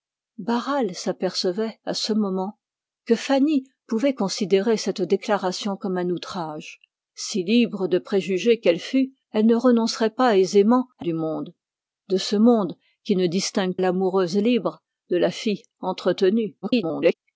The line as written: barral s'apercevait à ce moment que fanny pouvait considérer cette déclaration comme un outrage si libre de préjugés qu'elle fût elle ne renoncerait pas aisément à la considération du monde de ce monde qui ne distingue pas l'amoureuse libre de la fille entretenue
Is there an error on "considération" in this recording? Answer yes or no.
yes